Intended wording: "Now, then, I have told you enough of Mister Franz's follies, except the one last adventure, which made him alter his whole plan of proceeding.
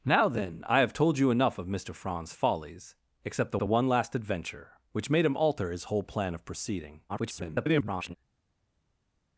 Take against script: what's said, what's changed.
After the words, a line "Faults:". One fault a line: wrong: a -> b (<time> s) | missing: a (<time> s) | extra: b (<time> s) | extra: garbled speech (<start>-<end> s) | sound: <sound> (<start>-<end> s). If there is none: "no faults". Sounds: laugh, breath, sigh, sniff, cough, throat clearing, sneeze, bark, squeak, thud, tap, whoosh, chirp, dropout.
"Now, then, I have told you enough of Mister Franz's follies, except the the one last adventure, which made him alter his whole plan of proceeding. [garbled]
Faults:
extra: the (3.6 s)
extra: garbled speech (7.1-8.2 s)